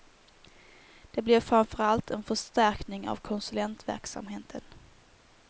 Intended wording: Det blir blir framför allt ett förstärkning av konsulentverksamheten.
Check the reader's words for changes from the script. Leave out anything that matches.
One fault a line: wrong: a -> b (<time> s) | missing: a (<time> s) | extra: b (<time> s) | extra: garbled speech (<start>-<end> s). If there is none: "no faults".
missing: blir (1.4 s)
wrong: ett -> en (2.1 s)